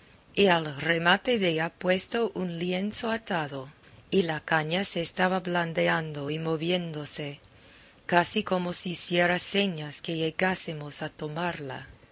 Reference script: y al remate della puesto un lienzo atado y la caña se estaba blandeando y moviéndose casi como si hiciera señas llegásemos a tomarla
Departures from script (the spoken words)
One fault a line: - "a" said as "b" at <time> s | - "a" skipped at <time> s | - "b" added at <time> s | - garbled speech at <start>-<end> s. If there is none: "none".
- "que" added at 10.0 s